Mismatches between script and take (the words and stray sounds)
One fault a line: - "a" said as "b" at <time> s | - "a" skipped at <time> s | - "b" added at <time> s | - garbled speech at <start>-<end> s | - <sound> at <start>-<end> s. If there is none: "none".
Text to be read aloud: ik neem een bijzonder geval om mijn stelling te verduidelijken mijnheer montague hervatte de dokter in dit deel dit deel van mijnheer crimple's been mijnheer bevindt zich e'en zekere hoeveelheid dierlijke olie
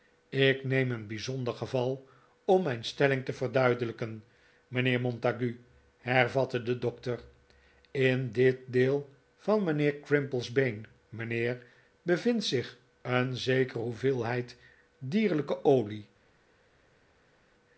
- "dit deel" skipped at 9.1 s